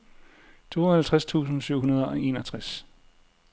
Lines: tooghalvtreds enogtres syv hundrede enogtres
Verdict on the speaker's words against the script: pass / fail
fail